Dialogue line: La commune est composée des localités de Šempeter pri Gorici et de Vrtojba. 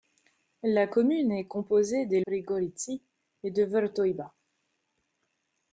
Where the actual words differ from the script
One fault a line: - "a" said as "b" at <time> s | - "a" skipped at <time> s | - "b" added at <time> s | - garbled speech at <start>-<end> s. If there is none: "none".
- "localités de Šempeter" skipped at 2.2 s